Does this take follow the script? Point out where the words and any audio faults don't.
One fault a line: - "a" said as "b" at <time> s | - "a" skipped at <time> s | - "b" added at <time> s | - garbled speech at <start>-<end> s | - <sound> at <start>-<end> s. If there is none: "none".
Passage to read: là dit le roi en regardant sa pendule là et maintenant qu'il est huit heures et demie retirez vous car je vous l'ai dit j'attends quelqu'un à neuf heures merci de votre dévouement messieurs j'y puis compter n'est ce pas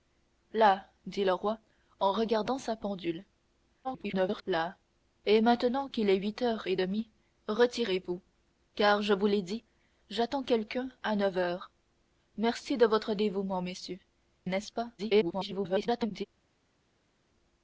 - garbled speech at 3.8-4.4 s
- "j'y puis compter" skipped at 14.0 s
- garbled speech at 15.0-16.3 s